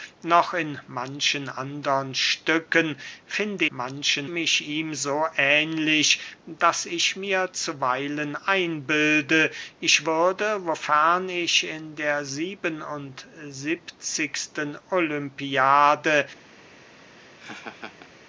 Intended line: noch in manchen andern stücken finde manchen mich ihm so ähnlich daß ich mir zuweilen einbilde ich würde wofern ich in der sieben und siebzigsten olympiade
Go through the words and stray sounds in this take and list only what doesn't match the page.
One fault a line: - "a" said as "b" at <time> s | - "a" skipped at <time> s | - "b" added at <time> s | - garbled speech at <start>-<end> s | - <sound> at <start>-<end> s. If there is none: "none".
- laugh at 17.0-18.1 s